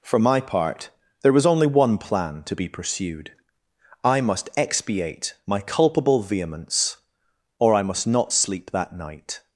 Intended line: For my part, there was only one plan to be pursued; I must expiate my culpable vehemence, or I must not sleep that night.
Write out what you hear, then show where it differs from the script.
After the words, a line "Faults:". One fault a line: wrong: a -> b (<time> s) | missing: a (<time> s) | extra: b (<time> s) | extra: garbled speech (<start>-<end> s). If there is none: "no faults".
For my part, there was only one plan to be pursued; I must expiate my culpable vehemence, or I must not sleep that night.
Faults:
no faults